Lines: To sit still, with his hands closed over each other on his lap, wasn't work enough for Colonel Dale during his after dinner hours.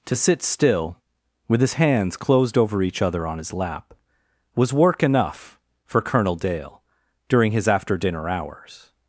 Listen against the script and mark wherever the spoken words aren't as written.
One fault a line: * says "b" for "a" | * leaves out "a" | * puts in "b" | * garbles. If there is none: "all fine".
* says "was" for "wasn't"